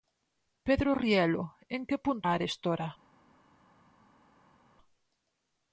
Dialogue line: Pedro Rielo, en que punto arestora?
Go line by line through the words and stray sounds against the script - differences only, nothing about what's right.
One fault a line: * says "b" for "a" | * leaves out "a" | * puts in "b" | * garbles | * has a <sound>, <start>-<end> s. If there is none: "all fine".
all fine